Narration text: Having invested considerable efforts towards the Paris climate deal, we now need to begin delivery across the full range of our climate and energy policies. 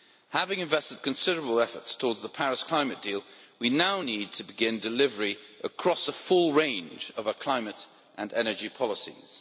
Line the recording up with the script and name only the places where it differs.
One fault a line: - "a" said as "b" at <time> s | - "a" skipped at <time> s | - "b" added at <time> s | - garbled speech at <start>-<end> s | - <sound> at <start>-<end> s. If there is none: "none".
none